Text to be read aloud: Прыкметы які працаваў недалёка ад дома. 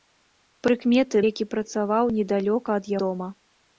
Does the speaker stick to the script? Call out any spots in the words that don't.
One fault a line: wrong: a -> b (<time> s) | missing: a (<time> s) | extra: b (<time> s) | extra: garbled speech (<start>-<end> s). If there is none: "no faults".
no faults